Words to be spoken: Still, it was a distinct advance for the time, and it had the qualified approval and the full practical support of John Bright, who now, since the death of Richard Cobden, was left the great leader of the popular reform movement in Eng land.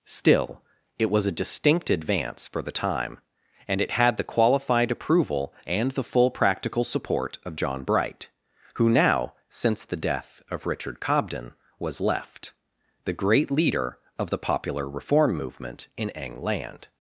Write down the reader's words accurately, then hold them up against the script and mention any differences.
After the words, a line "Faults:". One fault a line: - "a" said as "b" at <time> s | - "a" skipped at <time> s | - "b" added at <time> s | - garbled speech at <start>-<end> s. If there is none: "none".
Still, it was a distinct advance for the time, and it had the qualified approval and the full practical support of John Bright, who now, since the death of Richard Cobden, was left the great leader of the popular reform movement in Eng land.
Faults:
none